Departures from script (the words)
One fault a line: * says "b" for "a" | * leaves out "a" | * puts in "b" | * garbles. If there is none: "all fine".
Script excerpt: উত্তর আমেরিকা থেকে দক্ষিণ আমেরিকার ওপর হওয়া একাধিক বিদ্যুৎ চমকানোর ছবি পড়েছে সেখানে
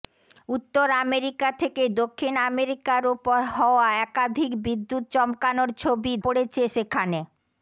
all fine